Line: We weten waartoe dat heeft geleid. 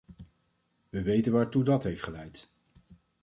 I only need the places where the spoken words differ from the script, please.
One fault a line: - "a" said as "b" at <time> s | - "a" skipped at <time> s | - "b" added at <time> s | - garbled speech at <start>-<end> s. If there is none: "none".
none